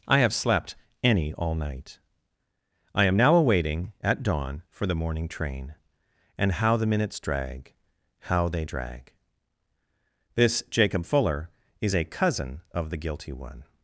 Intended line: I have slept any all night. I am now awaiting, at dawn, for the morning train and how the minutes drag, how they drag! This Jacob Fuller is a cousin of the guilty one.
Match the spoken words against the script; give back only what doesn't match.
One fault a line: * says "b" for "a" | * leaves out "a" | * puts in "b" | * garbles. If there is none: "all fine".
all fine